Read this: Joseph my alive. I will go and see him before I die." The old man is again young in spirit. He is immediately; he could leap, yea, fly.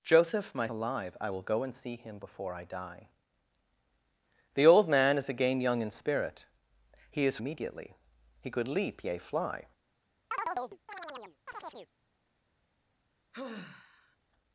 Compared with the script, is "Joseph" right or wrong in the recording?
right